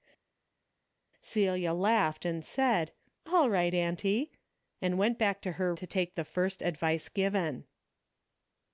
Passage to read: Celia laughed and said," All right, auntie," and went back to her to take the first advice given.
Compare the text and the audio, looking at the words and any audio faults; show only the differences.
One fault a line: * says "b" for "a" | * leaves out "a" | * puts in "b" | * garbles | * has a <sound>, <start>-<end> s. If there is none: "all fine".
all fine